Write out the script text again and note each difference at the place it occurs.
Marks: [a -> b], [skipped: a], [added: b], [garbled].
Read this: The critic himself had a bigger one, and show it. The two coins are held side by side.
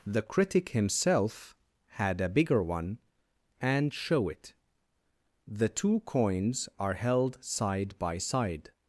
The critic himself had a bigger one, and show it. The two coins are held side by side.